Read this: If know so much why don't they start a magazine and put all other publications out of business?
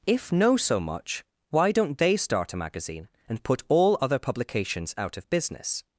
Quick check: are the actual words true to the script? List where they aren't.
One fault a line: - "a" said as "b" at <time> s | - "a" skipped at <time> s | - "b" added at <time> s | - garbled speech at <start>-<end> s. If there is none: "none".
none